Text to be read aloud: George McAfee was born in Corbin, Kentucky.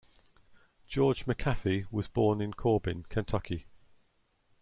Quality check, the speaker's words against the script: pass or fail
pass